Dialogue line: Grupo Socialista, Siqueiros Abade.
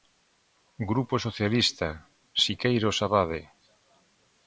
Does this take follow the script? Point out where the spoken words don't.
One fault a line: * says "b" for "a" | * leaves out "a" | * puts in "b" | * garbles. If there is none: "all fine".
all fine